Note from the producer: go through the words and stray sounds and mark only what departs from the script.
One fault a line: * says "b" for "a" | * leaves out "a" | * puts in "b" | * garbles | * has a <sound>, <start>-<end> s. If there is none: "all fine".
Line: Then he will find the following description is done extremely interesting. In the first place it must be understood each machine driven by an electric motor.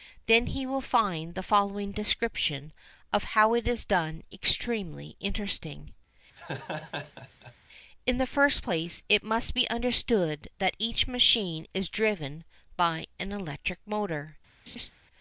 * puts in "of how it"
* has a laugh, 6.4-7.6 s
* puts in "that"
* puts in "is"
* has a laugh, 14.7-14.9 s